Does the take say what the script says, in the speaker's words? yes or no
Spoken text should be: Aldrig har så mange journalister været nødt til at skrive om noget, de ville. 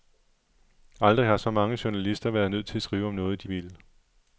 yes